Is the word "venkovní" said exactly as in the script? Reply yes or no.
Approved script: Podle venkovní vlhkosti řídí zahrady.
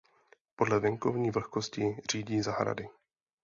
yes